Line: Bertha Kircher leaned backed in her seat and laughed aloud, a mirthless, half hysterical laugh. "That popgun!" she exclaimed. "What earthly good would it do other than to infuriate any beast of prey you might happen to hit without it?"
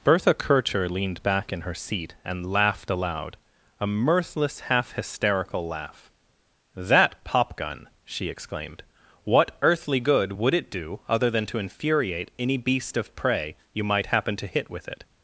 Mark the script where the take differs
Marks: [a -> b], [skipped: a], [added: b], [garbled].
Bertha Kircher leaned [backed -> back] in her seat and laughed aloud, a mirthless, half hysterical laugh. "That popgun!" she exclaimed. "What earthly good would it do other than to infuriate any beast of prey you might happen to hit [without -> with] it?"